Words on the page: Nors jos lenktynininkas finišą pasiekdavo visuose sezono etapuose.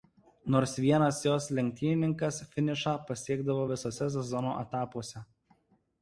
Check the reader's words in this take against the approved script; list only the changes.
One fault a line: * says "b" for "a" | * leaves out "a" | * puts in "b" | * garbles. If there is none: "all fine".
* puts in "vienas"